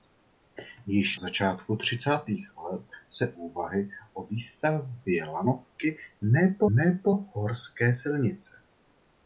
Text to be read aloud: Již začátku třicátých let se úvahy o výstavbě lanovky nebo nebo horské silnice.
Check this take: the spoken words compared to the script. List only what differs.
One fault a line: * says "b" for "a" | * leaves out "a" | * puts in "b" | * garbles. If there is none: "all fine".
all fine